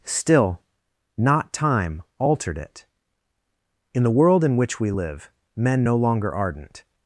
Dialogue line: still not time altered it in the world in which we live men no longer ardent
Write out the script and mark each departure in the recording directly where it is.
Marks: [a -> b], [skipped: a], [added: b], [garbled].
still not time altered it in the world in which we live men no longer ardent